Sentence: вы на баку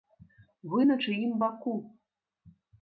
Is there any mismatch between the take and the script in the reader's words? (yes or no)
yes